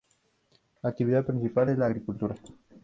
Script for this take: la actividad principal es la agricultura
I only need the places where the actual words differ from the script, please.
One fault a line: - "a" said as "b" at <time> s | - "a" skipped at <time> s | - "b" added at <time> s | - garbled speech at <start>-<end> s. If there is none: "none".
none